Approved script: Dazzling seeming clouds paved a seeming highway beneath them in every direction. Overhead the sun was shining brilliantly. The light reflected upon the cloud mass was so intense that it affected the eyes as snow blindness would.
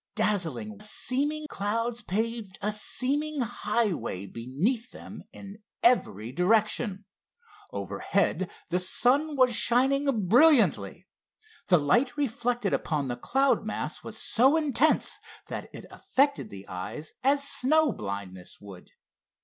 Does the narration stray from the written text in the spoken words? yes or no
no